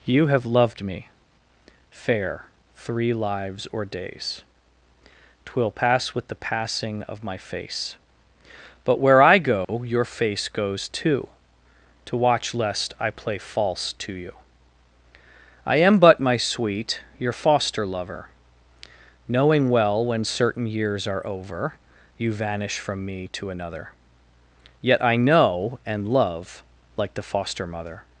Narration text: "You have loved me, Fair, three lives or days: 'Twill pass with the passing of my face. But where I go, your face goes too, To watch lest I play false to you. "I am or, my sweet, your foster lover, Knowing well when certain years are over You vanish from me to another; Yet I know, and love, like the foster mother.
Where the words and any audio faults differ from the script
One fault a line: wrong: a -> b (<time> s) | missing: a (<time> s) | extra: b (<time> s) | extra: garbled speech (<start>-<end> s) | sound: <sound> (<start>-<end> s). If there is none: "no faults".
sound: dropout (9.6-9.7 s)
wrong: or -> but (16.0 s)